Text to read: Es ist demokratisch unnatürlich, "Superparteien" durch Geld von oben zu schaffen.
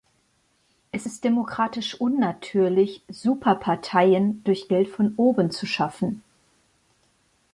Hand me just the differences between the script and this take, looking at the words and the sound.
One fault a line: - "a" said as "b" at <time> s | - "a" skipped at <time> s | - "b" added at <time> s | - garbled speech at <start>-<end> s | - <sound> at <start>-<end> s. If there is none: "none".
none